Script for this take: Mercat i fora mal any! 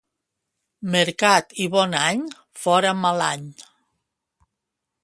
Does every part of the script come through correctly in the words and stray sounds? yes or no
no